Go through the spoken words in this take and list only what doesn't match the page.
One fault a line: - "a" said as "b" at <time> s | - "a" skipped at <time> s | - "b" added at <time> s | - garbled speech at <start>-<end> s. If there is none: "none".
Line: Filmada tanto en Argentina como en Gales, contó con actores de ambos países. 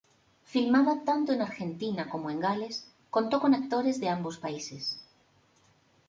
none